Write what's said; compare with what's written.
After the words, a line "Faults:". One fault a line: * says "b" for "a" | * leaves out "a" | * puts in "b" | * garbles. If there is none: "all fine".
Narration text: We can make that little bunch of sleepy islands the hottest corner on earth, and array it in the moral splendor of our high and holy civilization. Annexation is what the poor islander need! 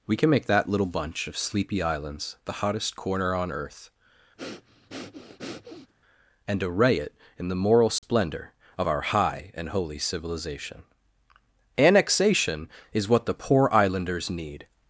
We can make that little bunch of sleepy islands the hottest corner on earth, and array it in the moral splendor of our high and holy civilization. Annexation is what the poor islanders need!
Faults:
* says "islanders" for "islander"